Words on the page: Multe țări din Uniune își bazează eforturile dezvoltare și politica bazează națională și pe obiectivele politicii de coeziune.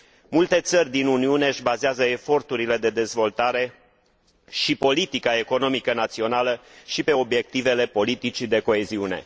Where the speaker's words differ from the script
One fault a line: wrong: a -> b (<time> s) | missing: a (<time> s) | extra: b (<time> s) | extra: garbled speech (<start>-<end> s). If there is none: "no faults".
extra: de (2.8 s)
wrong: bazează -> economică (5.4 s)